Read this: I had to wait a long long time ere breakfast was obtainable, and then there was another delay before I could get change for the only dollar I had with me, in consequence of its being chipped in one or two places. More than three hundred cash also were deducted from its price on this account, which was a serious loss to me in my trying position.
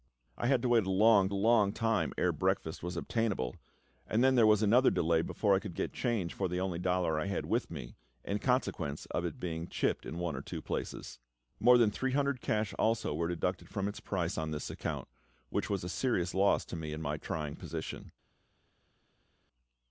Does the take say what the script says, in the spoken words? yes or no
yes